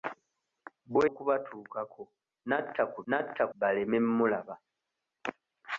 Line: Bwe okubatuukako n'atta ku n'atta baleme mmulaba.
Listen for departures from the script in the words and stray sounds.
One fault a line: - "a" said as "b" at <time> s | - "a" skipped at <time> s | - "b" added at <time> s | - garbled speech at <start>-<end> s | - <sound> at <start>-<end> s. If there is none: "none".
none